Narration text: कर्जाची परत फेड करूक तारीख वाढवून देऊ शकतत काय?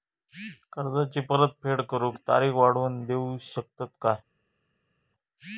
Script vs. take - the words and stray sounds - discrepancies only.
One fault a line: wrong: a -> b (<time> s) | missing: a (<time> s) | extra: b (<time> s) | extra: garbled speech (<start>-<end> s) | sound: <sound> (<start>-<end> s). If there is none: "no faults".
no faults